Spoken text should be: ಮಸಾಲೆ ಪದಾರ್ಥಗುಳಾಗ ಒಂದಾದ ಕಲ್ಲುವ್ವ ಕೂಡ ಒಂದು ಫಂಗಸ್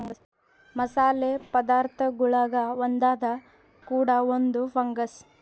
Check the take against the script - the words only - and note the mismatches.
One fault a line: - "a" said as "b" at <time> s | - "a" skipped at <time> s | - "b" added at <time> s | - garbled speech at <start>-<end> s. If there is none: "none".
- "ಕಲ್ಲುವ್ವ" skipped at 3.2 s